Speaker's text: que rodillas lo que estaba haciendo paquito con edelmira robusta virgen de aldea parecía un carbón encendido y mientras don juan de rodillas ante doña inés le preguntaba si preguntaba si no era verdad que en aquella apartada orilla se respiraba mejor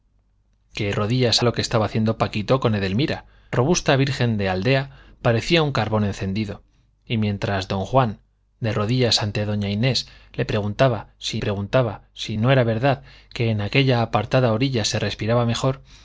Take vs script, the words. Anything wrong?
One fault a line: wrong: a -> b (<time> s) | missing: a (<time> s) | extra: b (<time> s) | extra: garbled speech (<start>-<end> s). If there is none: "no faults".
no faults